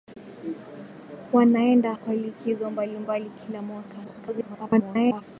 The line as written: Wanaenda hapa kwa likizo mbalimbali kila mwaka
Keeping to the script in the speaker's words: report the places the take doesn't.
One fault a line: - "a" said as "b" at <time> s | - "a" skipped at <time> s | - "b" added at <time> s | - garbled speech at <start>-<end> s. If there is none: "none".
- "hapa" skipped at 1.9 s
- garbled speech at 4.0-5.2 s